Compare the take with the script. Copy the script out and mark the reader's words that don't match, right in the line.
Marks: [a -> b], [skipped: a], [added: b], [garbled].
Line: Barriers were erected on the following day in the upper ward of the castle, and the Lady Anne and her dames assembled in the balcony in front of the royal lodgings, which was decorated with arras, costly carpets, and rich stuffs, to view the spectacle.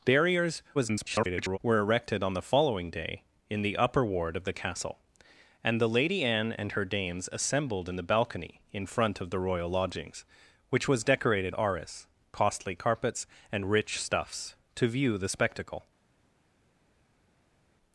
Barriers [garbled] were erected on the following day in the upper ward of the castle, and the Lady Anne and her dames assembled in the balcony in front of the royal lodgings, which was decorated [skipped: with] arras, costly carpets, and rich stuffs, to view the spectacle.